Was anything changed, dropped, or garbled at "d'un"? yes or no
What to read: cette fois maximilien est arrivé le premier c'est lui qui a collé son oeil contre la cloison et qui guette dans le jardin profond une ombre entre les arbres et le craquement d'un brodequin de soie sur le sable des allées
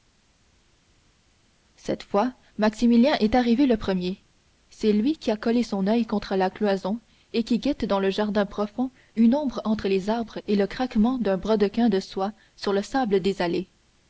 no